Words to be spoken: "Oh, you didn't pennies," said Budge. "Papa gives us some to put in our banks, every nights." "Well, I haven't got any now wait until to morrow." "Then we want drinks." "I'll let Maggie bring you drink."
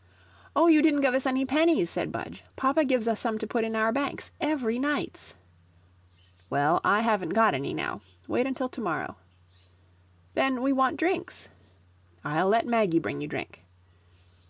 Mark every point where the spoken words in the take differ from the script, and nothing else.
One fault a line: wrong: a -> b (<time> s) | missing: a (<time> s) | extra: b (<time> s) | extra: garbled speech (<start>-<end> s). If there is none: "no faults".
extra: give us any (1.0 s)